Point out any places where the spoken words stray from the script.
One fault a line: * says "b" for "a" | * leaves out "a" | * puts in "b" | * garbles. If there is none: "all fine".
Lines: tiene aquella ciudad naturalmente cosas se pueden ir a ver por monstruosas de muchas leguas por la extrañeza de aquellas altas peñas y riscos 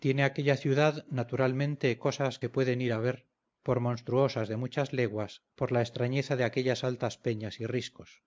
all fine